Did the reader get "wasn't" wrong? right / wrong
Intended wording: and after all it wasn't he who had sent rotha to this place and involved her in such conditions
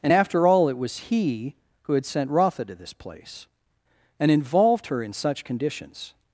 wrong